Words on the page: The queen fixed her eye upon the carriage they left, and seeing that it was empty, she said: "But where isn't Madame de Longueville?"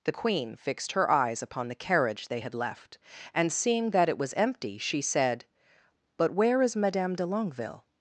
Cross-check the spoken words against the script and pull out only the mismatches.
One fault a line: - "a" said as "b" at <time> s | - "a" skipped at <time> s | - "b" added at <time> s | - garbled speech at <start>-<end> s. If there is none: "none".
- "eye" said as "eyes" at 1.1 s
- "had" added at 2.4 s
- "isn't" said as "is" at 6.6 s